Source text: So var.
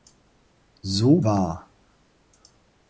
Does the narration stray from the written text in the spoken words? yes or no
no